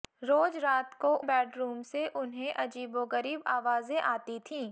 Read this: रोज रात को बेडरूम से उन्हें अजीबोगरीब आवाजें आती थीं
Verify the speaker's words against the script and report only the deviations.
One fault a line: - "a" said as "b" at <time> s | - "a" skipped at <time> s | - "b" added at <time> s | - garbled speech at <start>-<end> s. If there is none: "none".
none